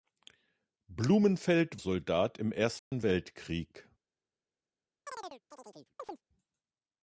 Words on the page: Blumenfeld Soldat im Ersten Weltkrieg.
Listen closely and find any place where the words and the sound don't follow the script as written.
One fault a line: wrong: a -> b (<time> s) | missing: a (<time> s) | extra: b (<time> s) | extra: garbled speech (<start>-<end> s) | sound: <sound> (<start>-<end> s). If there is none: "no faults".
sound: dropout (2.8-2.9 s)
sound: chirp (5.1-6.2 s)